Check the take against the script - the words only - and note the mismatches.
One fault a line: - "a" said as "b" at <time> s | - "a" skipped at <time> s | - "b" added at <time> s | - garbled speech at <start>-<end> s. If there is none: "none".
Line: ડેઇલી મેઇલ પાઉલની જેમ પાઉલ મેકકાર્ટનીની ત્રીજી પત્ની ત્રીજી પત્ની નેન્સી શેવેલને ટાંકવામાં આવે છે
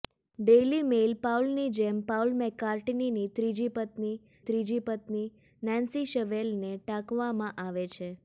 none